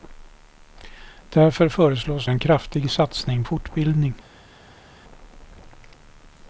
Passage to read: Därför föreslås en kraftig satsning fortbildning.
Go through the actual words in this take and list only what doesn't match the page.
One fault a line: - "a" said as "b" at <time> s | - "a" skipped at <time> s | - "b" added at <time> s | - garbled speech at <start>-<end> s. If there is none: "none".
none